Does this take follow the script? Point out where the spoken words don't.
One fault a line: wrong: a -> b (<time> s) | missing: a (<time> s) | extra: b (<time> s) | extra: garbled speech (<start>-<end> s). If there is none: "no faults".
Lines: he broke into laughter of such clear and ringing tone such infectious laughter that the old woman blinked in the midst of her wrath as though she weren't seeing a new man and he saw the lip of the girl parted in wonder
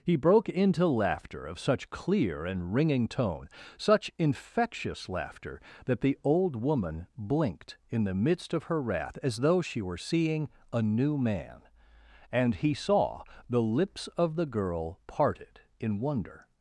wrong: weren't -> were (9.8 s)
wrong: lip -> lips (13.6 s)